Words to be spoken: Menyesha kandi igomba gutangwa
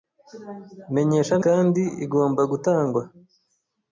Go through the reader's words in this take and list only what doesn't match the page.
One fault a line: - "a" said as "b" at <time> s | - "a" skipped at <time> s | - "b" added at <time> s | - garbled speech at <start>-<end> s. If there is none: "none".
none